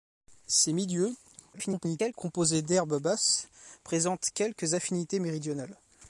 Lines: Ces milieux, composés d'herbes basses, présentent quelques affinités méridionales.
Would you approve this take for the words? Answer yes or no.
no